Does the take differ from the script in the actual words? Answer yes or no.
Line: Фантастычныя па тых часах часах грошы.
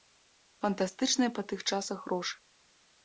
yes